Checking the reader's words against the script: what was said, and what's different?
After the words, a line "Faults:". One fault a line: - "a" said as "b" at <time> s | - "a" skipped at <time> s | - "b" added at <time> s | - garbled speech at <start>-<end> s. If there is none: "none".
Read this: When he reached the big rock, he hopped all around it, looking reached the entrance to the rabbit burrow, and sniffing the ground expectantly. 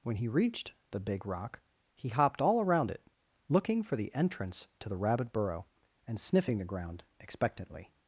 When he reached the big rock, he hopped all around it, looking for the entrance to the rabbit burrow, and sniffing the ground expectantly.
Faults:
- "reached" said as "for" at 3.8 s